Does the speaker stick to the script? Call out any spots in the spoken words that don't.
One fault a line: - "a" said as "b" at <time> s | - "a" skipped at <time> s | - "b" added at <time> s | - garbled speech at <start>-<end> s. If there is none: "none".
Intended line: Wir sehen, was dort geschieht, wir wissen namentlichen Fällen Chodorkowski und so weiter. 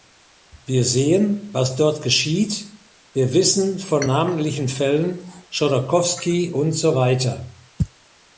- "von" added at 3.8 s